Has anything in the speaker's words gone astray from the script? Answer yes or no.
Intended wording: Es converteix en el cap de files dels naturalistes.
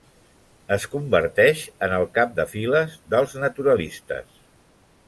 no